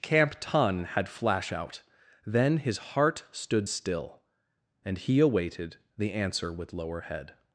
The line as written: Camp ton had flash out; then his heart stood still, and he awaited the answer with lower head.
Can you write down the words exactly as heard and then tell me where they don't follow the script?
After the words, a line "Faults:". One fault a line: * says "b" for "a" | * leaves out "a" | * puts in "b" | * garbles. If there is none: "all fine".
Camp ton had flash out; then his heart stood still, and he awaited the answer with lower head.
Faults:
all fine